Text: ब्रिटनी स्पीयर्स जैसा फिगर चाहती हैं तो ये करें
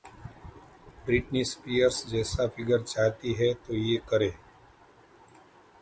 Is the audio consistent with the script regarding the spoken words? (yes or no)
yes